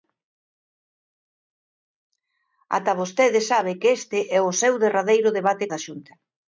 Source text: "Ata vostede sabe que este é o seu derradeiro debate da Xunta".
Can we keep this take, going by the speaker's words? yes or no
yes